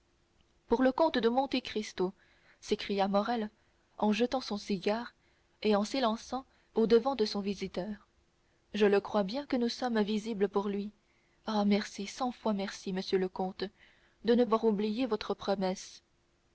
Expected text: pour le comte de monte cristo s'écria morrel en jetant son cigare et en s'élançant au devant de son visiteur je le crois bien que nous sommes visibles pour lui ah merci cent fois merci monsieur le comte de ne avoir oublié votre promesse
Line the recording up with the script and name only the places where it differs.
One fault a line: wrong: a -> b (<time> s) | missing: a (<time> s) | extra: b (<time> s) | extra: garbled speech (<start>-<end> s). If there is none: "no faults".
no faults